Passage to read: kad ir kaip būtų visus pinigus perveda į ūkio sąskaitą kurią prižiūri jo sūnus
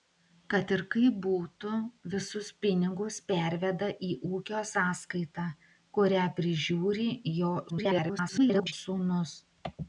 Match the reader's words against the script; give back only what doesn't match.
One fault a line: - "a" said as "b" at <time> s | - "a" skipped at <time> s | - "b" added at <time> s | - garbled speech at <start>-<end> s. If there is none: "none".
- garbled speech at 7.7-8.7 s